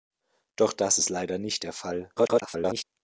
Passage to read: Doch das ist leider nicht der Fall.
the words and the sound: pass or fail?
fail